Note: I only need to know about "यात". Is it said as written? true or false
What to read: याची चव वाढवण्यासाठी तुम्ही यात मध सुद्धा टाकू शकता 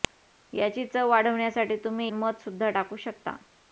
false